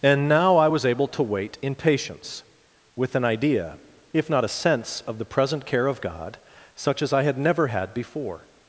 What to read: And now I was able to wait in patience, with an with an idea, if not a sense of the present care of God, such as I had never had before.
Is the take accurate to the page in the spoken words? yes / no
no